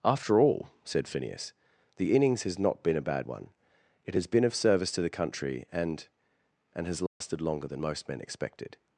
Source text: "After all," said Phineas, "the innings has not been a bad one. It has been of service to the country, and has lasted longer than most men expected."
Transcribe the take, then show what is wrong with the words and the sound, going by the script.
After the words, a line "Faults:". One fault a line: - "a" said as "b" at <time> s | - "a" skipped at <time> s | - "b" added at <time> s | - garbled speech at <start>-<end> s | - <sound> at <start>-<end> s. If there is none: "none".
"After all," said Phineas, "the innings has not been a bad one. It has been of service to the country, and and has lasted longer than most men expected."
Faults:
- "and" added at 6.7 s
- dropout at 7.1-7.2 s